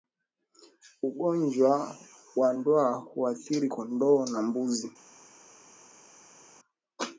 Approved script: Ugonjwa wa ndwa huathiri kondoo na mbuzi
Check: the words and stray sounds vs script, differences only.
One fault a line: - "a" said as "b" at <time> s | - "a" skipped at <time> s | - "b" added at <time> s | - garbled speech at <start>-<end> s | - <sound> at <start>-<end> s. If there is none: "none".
none